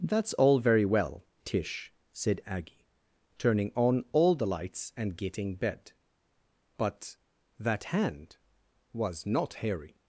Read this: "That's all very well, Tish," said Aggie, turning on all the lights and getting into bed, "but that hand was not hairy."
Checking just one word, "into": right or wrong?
wrong